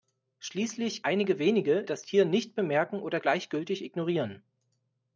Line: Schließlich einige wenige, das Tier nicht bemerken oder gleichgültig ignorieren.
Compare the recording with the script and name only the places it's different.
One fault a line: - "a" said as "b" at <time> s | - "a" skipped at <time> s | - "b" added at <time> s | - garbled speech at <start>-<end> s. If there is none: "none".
none